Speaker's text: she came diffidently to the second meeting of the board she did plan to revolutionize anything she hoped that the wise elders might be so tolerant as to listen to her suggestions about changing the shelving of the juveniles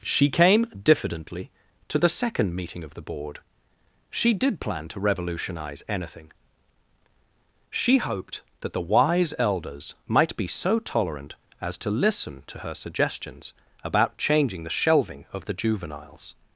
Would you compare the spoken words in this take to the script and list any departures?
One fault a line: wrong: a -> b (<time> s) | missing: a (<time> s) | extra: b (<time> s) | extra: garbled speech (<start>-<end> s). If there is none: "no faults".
no faults